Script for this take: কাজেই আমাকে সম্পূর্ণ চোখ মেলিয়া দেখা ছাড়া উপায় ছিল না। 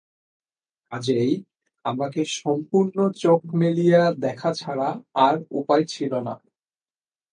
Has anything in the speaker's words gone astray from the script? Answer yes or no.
yes